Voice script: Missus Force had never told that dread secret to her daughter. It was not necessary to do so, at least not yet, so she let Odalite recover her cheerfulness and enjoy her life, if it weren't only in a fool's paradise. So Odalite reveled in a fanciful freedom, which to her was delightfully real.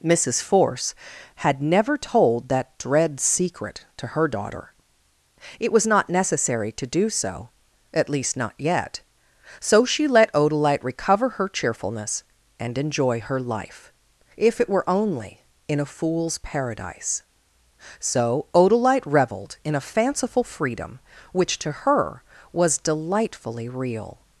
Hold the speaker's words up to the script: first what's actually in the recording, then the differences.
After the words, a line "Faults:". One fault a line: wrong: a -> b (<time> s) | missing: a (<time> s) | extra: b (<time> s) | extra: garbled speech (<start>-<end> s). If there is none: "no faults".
Missus Force had never told that dread secret to her daughter. It was not necessary to do so, at least not yet, so she let Odalite recover her cheerfulness and enjoy her life, if it were only in a fool's paradise. So Odalite reveled in a fanciful freedom, which to her was delightfully real.
Faults:
wrong: weren't -> were (14.7 s)